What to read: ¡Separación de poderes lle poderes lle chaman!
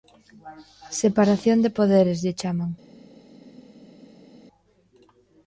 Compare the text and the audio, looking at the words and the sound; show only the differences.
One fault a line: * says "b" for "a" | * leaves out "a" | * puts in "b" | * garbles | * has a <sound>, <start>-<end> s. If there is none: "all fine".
* leaves out "poderes lle"